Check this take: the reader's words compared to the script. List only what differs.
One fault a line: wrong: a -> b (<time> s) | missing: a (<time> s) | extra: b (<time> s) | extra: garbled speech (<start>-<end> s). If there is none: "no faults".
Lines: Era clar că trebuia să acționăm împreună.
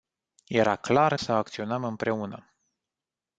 missing: că trebuia (1.2 s)